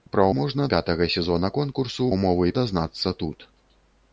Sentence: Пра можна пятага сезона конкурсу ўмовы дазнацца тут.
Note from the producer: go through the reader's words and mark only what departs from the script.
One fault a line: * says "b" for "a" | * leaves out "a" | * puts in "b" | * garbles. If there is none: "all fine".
all fine